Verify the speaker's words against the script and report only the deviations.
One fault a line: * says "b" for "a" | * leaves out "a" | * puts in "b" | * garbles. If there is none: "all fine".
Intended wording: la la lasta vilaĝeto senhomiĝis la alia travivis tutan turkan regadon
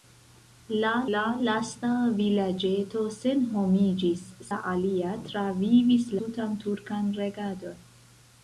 all fine